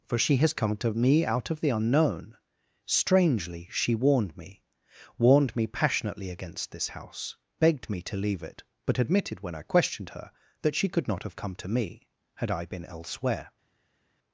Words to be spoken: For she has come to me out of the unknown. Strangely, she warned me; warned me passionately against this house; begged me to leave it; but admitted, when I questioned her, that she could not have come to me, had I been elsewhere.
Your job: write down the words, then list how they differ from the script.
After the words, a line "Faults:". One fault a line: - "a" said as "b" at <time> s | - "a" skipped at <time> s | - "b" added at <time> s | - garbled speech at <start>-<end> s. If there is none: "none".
For she has come to me out of the unknown. Strangely, she warned me; warned me passionately against this house; begged me to leave it; but admitted, when I questioned her, that she could not have come to me, had I been elsewhere.
Faults:
none